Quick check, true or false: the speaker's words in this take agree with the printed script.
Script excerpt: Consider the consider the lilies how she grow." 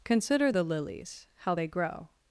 false